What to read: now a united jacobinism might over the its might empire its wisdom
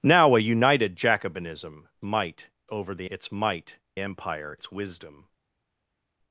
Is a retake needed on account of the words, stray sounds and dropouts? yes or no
no